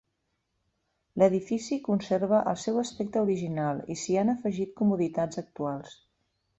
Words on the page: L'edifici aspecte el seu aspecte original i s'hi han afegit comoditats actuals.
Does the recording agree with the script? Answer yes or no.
no